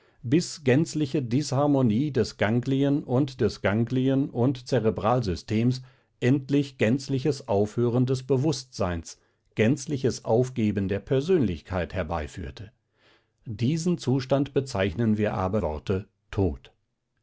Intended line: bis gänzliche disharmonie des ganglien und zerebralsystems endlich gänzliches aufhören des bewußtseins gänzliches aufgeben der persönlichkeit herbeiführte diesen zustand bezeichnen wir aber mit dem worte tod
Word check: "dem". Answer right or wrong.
wrong